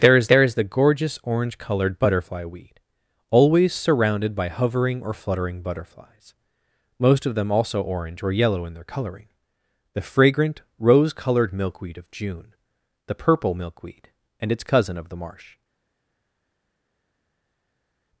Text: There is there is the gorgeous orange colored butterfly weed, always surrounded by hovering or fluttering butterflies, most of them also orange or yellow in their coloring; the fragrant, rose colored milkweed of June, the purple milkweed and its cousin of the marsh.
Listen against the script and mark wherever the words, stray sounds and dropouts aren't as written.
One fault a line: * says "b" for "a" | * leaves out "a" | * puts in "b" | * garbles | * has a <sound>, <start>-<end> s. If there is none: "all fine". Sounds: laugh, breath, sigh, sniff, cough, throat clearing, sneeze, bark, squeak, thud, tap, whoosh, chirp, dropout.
all fine